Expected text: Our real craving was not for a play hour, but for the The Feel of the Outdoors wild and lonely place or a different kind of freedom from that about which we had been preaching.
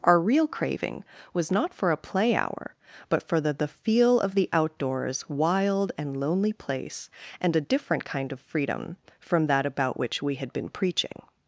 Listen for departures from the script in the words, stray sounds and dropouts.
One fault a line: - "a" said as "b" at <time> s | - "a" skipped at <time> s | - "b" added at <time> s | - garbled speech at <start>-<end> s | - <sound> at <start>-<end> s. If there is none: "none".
- "or" said as "and" at 7.4 s